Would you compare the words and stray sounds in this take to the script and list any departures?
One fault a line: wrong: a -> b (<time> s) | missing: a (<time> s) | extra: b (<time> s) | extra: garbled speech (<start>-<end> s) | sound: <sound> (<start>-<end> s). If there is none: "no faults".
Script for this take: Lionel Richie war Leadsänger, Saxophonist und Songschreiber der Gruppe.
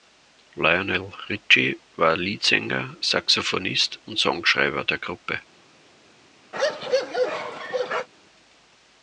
sound: bark (6.5-8.1 s)